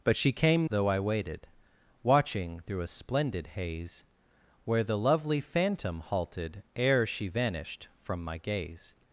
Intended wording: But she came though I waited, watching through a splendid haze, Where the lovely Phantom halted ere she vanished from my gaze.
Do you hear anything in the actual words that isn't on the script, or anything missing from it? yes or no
no